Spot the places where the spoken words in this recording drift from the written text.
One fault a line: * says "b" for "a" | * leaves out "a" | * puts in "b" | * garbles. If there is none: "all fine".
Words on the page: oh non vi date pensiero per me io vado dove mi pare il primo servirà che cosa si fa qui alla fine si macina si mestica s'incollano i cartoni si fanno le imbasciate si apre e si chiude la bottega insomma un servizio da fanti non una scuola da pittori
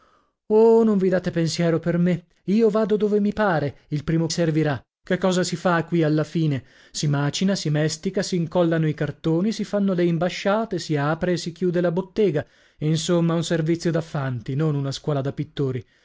all fine